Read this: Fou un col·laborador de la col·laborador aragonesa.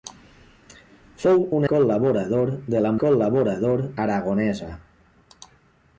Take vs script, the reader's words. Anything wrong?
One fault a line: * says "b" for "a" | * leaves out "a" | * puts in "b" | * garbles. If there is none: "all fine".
all fine